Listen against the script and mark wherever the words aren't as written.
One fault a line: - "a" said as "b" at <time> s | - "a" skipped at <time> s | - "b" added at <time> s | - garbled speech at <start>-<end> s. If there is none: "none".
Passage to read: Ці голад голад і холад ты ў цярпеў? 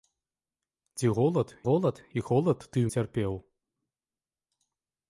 none